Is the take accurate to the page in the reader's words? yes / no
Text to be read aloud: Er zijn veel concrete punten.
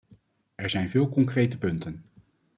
yes